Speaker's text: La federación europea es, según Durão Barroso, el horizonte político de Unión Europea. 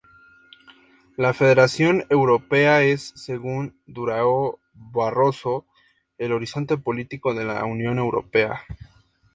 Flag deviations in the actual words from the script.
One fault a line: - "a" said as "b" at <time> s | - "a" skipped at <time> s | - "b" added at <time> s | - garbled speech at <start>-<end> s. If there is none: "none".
- "la" added at 7.5 s